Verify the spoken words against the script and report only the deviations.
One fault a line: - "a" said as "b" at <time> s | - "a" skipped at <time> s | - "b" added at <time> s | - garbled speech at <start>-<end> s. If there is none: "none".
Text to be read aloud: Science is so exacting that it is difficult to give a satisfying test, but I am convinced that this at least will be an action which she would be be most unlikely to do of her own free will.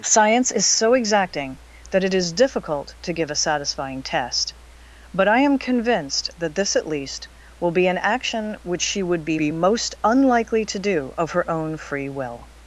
none